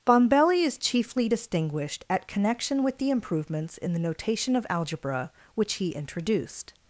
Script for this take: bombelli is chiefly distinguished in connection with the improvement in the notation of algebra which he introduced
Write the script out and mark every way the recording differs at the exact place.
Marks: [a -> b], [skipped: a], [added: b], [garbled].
bombelli is chiefly distinguished [in -> at] connection with the [improvement -> improvements] in the notation of algebra which he introduced